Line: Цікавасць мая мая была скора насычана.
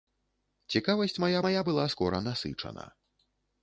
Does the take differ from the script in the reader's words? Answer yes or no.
no